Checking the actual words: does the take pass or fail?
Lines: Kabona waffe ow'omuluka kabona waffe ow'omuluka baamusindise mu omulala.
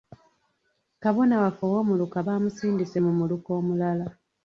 fail